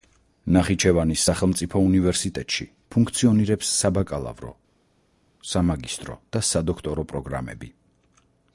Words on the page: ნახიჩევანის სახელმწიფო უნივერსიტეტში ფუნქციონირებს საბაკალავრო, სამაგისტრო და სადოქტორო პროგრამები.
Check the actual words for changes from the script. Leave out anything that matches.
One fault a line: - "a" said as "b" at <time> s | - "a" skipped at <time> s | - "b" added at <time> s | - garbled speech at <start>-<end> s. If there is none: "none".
none